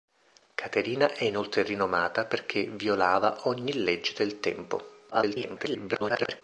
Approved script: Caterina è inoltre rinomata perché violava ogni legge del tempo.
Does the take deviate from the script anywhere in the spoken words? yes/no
yes